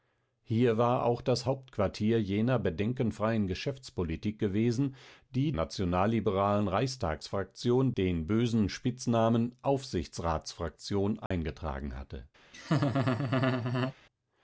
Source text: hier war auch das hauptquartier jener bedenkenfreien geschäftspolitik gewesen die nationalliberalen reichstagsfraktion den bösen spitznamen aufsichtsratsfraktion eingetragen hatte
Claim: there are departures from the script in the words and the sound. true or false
true